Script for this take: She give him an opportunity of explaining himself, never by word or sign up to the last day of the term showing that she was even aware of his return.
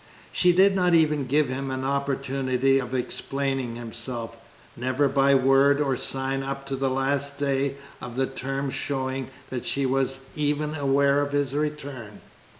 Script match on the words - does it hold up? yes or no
no